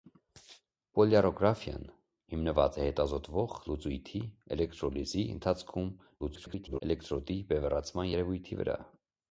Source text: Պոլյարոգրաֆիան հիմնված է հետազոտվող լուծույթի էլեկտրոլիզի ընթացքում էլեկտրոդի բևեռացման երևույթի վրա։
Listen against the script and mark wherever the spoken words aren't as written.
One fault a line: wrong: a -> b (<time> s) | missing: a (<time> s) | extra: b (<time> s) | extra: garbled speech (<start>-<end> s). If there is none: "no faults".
extra: garbled speech (6.2-6.8 s)